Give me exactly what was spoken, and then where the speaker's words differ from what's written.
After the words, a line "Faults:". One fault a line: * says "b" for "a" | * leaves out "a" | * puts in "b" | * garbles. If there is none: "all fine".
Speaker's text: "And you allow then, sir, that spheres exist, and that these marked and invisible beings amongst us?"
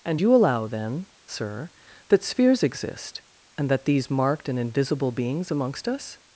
"And you allow then, sir, that spheres exist, and that these marked and invisible beings amongst us?"
Faults:
all fine